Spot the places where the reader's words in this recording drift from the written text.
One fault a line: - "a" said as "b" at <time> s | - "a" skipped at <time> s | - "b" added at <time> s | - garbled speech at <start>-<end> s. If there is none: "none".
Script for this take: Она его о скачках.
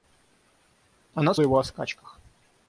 none